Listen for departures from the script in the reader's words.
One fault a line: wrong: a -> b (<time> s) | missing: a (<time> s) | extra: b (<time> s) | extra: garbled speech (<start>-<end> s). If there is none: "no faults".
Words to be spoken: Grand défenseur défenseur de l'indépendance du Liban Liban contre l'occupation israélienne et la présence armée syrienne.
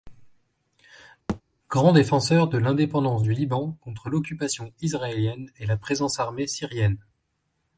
missing: défenseur (2.5 s)
missing: Liban (3.8 s)